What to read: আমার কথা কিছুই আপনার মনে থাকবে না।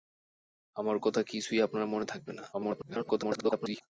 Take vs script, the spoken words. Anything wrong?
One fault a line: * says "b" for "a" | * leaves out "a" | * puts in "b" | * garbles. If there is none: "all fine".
* garbles